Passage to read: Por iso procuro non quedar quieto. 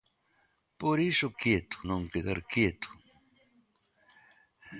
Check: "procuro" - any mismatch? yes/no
yes